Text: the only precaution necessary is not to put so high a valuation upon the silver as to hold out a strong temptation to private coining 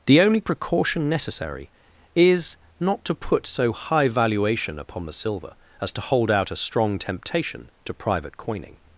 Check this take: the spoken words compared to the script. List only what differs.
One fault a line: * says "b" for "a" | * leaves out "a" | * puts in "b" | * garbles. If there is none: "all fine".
* leaves out "a"